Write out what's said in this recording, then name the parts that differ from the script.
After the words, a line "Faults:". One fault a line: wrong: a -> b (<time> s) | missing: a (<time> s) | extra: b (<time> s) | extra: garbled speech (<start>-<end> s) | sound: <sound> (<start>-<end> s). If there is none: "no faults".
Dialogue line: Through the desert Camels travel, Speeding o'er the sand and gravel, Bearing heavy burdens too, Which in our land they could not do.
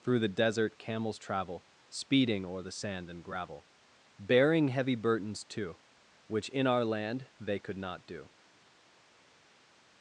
Through the desert Camels travel, Speeding o'er the sand and gravel, Bearing heavy burdens too, Which in our land they could not do.
Faults:
no faults